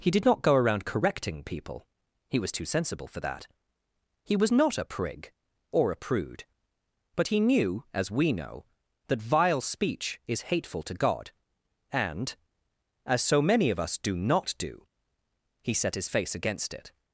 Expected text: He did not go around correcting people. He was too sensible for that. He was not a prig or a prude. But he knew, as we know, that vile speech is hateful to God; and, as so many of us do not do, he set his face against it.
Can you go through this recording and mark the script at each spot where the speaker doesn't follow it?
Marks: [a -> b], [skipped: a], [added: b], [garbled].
He did not go around correcting people. He was too sensible for that. He was not a prig or a prude. But he knew, as we know, that vile speech is hateful to God; and, as so many of us do not do, he set his face against it.